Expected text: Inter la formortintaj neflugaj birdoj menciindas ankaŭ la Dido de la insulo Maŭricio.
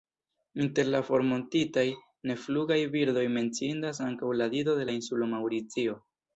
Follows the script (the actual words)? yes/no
yes